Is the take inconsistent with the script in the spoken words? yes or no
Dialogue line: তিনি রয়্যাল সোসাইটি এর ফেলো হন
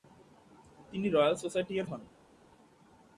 yes